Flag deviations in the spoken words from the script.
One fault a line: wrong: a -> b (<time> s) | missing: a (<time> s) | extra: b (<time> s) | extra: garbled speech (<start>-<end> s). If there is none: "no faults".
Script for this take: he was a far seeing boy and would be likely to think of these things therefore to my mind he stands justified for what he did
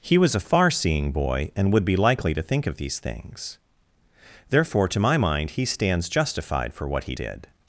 no faults